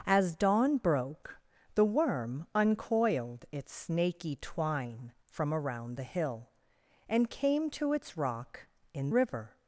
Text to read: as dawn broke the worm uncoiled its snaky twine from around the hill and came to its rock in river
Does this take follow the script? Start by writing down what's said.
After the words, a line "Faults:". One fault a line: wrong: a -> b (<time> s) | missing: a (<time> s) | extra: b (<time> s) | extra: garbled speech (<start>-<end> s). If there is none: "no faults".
as dawn broke the worm uncoiled its snaky twine from around the hill and came to its rock in river
Faults:
no faults